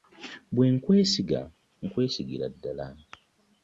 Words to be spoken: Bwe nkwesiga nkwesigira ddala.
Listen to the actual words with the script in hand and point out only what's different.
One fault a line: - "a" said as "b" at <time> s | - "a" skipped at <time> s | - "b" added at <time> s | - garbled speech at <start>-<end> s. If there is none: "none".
none